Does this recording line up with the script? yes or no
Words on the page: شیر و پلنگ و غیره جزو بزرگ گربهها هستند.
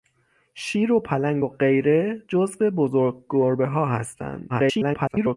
no